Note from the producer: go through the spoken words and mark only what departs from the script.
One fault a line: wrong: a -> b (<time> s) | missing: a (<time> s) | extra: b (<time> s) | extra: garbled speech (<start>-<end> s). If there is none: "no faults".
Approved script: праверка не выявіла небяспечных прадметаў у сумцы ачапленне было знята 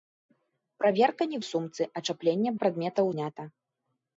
missing: выявіла небяспечных прадметаў (1.4 s)
wrong: было -> прадметаў (2.6 s)